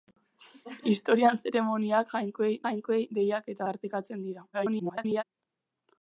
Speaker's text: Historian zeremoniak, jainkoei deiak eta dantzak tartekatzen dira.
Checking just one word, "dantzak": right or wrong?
wrong